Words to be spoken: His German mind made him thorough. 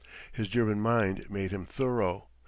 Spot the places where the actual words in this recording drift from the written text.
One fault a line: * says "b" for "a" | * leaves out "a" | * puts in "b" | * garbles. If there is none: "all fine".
all fine